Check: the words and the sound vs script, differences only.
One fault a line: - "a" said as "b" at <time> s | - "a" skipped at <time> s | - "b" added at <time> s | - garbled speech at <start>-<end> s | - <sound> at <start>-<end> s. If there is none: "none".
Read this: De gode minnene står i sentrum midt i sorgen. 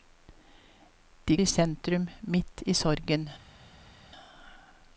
- "gode minnene står" skipped at 1.4 s